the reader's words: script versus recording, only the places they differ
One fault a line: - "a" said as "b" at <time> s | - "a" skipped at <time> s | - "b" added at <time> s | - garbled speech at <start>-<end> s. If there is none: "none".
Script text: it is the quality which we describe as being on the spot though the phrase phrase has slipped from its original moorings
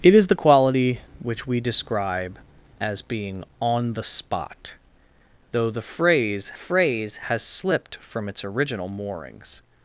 none